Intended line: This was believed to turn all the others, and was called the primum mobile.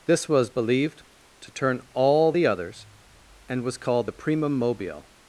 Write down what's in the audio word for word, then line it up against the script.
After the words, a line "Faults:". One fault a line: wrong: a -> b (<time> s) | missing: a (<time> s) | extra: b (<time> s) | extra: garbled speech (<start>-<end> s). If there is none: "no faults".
This was believed to turn all the others, and was called the primum mobile.
Faults:
no faults